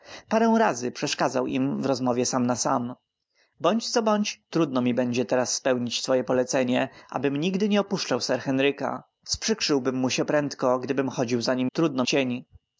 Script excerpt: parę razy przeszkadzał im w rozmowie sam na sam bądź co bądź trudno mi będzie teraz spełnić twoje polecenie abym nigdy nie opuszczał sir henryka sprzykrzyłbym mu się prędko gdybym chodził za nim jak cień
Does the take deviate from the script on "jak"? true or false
true